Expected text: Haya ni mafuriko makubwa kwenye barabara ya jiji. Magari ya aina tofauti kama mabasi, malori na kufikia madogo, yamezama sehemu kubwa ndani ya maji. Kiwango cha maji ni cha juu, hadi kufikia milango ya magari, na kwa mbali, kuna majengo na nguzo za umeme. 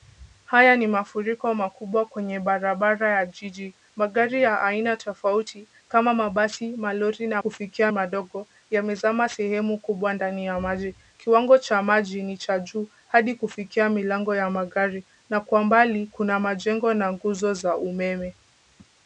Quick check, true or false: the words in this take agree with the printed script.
true